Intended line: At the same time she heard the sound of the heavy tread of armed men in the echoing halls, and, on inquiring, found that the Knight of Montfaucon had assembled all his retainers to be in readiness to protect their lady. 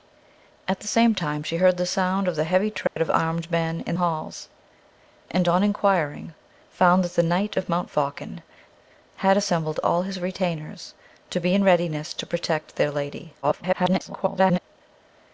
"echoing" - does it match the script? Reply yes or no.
no